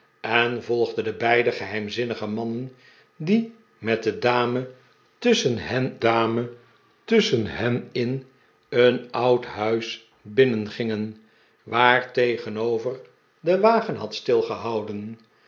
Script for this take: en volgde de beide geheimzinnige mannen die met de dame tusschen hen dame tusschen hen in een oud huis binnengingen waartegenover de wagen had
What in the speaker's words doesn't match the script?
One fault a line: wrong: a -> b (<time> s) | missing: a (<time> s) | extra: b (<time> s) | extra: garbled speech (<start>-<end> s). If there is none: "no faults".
no faults